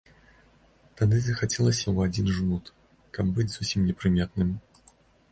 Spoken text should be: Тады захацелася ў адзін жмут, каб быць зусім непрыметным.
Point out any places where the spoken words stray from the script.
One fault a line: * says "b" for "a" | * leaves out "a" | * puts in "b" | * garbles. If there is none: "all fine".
all fine